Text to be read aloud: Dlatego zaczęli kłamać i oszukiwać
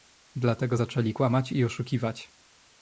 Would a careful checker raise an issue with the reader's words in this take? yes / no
no